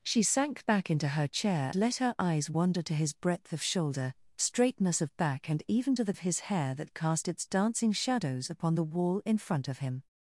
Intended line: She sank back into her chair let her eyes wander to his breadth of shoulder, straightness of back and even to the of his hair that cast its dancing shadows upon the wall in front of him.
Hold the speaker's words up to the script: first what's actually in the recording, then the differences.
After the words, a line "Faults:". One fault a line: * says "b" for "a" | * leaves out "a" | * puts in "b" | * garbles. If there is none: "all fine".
She sank back into her chair let her eyes wander to his breadth of shoulder, straightness of back and even to the of his hair that cast its dancing shadows upon the wall in front of him.
Faults:
all fine